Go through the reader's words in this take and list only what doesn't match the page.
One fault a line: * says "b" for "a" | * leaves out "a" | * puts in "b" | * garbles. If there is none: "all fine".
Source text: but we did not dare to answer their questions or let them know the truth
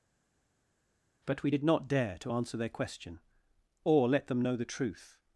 * says "question" for "questions"